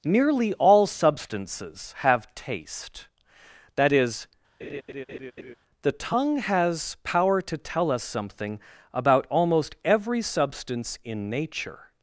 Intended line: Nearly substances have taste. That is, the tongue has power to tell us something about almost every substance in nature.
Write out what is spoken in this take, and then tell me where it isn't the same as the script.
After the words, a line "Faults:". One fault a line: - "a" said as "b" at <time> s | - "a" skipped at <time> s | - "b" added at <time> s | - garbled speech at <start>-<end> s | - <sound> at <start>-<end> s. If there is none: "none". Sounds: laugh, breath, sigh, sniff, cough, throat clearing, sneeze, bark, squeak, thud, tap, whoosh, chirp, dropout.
Nearly all substances have taste. That is, the tongue has power to tell us something about almost every substance in nature.
Faults:
- "all" added at 0.5 s
- laugh at 4.6-5.5 s